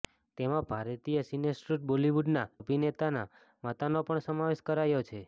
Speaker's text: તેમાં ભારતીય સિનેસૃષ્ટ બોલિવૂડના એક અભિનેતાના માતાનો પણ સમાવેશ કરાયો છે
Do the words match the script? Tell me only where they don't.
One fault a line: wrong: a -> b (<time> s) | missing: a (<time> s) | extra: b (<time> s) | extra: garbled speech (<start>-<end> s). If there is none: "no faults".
missing: એક (2.5 s)